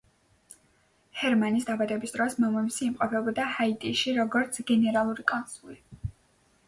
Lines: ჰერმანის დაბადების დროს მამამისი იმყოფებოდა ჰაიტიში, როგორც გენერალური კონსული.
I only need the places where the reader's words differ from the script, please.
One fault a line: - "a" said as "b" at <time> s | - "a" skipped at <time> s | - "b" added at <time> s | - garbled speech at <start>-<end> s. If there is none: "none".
none